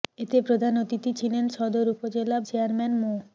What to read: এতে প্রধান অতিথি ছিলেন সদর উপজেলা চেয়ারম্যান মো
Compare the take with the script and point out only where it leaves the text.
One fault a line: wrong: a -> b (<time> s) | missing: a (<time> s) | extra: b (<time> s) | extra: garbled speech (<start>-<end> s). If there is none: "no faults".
no faults